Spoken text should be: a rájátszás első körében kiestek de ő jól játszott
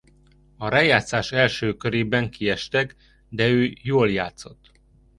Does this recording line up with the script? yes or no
yes